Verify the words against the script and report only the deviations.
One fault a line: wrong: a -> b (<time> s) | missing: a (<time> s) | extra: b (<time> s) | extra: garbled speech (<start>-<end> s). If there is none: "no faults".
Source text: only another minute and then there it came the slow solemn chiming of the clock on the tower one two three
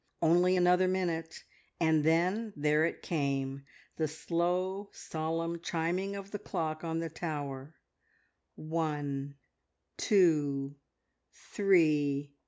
no faults